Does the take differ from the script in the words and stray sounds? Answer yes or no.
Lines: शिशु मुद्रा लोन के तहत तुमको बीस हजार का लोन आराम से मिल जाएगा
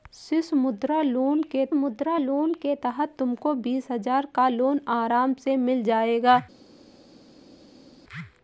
yes